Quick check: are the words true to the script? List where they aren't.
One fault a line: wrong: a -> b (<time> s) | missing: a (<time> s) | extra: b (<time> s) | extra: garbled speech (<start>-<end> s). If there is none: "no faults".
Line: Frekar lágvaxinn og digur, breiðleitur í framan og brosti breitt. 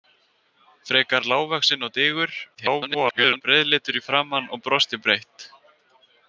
extra: garbled speech (2.5-3.4 s)